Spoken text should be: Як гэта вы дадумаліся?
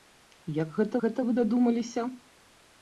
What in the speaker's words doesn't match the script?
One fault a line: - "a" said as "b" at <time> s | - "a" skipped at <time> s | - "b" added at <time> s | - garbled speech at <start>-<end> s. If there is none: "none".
- "гэта" added at 1.0 s